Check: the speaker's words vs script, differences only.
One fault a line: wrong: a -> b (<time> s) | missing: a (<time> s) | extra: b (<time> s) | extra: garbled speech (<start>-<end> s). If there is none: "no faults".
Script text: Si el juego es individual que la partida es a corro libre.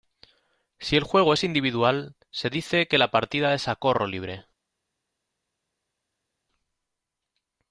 extra: se dice (2.3 s)